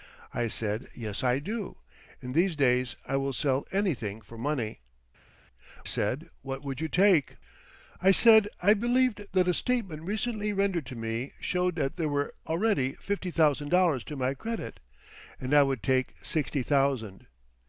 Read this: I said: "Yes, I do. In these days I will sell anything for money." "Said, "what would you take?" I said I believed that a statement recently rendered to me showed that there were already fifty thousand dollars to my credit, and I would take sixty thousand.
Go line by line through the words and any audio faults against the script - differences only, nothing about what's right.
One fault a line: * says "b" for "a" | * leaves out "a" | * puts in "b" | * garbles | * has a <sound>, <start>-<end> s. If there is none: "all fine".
all fine